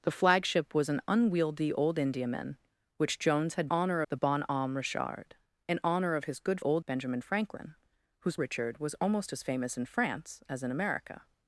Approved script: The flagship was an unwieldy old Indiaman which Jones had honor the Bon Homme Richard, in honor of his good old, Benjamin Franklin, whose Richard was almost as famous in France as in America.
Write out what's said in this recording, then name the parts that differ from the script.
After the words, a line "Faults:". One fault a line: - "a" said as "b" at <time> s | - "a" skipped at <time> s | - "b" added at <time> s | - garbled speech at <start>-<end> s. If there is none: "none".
The flagship was an unwieldy old Indiaman which Jones had honor the Bon Homme Richard, in honor of his good old, Benjamin Franklin, whose Richard was almost as famous in France as in America.
Faults:
none